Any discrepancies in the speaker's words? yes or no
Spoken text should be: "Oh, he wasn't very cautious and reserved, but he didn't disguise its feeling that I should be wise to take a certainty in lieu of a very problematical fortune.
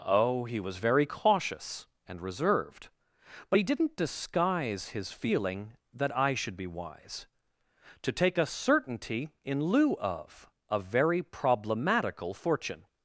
yes